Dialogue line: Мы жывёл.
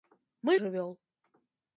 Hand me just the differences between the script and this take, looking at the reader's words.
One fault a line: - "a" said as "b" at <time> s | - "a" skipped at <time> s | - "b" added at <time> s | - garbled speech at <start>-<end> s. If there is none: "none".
none